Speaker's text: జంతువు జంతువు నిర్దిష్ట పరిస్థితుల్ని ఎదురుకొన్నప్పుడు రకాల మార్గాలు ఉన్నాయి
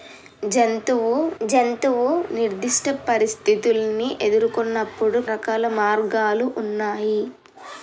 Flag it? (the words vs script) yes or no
no